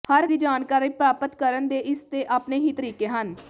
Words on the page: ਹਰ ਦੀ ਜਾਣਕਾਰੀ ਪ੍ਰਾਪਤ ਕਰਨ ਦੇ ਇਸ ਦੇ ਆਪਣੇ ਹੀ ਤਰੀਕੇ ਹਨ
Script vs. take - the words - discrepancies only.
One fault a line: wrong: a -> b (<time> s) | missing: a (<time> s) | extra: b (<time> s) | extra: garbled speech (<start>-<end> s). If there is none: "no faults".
no faults